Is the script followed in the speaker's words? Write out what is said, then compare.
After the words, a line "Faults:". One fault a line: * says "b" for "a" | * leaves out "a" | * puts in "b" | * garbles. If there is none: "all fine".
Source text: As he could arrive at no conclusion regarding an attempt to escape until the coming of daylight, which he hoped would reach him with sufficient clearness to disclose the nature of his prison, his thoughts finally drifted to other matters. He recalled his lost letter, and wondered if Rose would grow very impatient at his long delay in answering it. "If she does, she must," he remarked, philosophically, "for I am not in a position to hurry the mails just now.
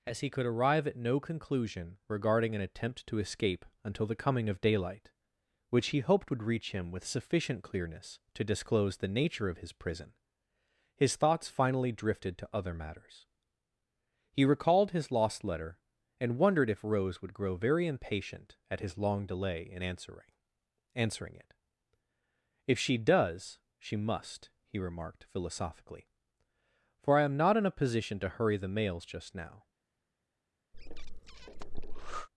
As he could arrive at no conclusion regarding an attempt to escape until the coming of daylight, which he hoped would reach him with sufficient clearness to disclose the nature of his prison, his thoughts finally drifted to other matters. He recalled his lost letter, and wondered if Rose would grow very impatient at his long delay in answering answering it. "If she does, she must," he remarked, philosophically, "for I am not in a position to hurry the mails just now.
Faults:
* puts in "answering"